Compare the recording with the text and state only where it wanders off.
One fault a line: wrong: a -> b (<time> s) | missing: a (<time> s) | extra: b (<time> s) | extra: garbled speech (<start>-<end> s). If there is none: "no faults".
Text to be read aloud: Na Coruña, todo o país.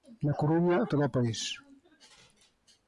no faults